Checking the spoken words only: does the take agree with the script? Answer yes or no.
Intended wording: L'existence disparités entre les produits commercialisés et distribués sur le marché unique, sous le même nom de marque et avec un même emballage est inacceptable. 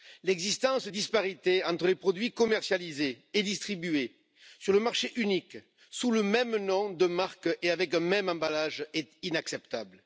yes